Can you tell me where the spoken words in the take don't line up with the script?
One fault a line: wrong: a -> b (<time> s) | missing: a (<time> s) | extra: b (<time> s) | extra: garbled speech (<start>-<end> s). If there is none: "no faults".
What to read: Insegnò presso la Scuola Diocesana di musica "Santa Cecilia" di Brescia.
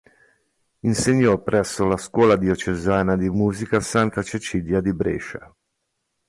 no faults